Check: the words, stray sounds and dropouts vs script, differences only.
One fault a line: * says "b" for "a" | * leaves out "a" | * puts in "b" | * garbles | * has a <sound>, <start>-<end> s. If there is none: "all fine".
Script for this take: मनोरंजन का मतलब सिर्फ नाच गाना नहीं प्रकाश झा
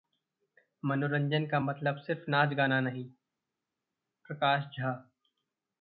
all fine